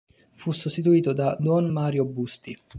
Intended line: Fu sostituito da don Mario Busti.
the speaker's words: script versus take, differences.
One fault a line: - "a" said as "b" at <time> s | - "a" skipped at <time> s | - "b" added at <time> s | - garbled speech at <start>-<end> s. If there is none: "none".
none